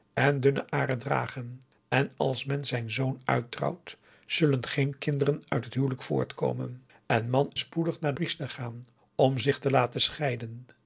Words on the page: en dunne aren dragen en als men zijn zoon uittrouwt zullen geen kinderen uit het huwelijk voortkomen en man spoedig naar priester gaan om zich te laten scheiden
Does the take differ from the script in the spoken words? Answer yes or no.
no